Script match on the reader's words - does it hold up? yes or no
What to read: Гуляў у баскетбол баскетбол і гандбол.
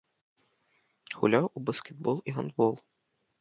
no